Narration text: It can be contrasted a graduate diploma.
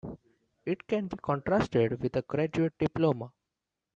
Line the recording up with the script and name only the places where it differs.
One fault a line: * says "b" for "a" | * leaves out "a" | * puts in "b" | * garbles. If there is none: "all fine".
* puts in "with"